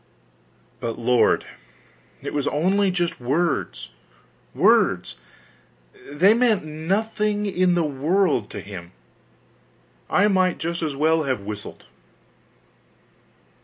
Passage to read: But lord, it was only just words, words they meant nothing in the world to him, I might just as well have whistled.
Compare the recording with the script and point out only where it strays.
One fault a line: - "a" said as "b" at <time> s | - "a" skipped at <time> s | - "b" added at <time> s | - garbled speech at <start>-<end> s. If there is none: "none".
none